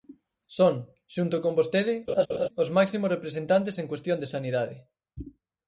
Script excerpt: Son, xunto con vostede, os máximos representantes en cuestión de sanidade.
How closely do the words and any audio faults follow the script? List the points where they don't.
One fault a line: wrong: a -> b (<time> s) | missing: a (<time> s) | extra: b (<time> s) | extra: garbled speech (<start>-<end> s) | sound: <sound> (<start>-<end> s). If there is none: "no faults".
sound: laugh (2.1-2.5 s)